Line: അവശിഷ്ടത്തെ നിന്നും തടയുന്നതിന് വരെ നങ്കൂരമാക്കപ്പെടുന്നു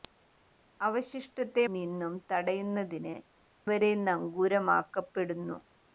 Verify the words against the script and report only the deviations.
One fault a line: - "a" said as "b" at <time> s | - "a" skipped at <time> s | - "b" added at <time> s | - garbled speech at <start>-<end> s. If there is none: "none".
none